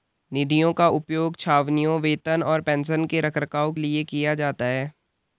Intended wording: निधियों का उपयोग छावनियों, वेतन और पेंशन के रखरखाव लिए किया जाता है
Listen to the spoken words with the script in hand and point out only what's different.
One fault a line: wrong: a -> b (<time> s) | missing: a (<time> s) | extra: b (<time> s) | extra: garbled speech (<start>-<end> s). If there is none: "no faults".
no faults